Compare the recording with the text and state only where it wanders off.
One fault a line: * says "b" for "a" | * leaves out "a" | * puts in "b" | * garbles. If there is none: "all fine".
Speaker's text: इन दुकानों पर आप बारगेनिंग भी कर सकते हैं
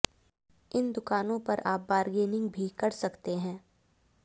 all fine